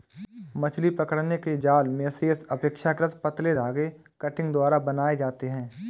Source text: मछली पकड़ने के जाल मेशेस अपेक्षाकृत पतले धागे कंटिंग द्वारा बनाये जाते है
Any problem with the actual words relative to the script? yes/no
no